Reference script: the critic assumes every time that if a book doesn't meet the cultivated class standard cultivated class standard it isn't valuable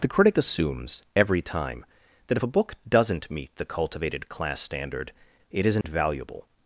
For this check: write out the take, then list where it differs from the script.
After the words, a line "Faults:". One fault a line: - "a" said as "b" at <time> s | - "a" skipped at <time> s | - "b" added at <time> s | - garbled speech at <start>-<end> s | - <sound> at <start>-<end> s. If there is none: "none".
the critic assumes every time that if a book doesn't meet the cultivated class standard it isn't valuable
Faults:
- "cultivated class standard" skipped at 5.1 s
- dropout at 5.8-5.8 s